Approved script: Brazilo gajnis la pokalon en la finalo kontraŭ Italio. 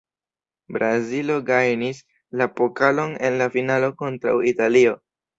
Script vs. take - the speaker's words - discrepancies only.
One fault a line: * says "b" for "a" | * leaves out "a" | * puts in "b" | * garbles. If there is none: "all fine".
all fine